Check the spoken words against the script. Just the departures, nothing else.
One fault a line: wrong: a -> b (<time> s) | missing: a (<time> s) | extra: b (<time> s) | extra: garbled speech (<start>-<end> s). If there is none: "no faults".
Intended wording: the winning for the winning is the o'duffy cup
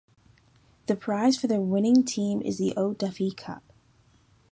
wrong: winning -> prize (0.9 s)
extra: team (2.0 s)